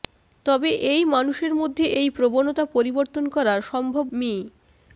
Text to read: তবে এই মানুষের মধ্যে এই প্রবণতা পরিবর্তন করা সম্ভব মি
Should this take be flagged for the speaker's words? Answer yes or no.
no